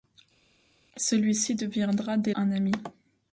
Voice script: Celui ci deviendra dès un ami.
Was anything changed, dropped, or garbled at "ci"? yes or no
no